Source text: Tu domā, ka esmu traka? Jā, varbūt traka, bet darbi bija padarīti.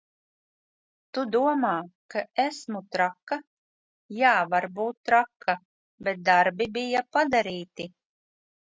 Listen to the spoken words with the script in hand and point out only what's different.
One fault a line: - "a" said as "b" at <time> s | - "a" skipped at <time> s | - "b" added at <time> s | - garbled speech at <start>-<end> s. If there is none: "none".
none